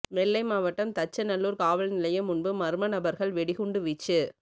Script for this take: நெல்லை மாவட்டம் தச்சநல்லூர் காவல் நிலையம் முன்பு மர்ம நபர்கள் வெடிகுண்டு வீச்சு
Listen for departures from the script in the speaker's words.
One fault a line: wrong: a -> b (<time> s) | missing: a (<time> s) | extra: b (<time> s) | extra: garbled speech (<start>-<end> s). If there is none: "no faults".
no faults